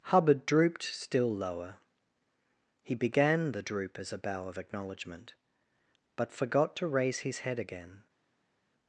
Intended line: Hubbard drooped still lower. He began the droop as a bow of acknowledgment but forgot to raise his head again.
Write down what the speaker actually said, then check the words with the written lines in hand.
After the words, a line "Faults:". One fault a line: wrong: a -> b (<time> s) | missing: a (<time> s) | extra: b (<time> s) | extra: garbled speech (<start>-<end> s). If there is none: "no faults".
Hubbard drooped still lower. He began the droop as a bow of acknowledgment but forgot to raise his head again.
Faults:
no faults